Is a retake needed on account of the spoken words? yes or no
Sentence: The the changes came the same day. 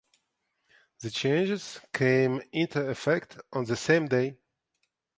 yes